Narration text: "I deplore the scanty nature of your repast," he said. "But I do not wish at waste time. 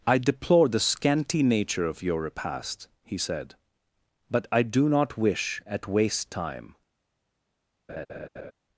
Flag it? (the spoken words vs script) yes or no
no